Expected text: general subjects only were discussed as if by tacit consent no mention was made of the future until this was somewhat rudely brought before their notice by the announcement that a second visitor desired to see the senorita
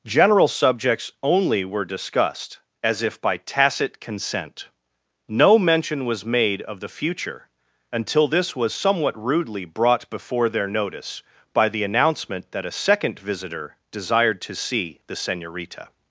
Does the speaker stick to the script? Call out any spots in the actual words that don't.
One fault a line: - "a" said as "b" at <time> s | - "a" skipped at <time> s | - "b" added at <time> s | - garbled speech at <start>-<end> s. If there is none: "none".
none